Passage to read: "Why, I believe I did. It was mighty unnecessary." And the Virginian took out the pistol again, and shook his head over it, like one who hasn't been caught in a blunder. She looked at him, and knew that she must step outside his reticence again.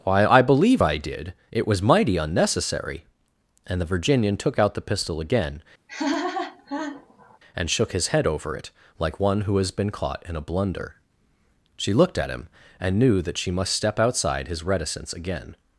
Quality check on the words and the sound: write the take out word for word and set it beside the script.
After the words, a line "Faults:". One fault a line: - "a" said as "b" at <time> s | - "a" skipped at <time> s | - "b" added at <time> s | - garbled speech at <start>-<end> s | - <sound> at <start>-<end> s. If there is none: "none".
"Why, I believe I did. It was mighty unnecessary." And the Virginian took out the pistol again, and shook his head over it, like one who has been caught in a blunder. She looked at him, and knew that she must step outside his reticence again.
Faults:
- laugh at 5.9-7.4 s
- "hasn't" said as "has" at 9.6 s